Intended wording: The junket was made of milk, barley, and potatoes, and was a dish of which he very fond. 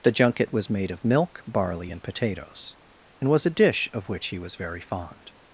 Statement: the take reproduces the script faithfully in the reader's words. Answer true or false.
false